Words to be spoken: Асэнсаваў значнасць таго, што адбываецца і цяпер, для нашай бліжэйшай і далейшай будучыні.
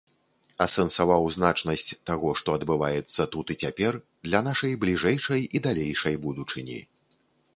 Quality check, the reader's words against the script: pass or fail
fail